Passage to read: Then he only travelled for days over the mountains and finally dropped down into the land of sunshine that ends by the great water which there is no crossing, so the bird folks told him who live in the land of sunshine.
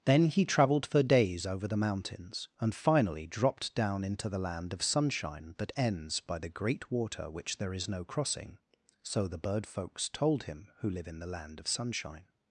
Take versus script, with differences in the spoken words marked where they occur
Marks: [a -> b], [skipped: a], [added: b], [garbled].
Then he [skipped: only] travelled for days over the mountains and finally dropped down into the land of sunshine that ends by the great water which there is no crossing, so the bird folks told him who live in the land of sunshine.